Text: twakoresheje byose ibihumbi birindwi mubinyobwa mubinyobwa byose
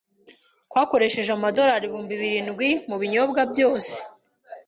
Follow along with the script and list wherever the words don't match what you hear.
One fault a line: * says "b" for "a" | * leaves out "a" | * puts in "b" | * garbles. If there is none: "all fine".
* says "amadorari" for "byose"
* leaves out "mubinyobwa"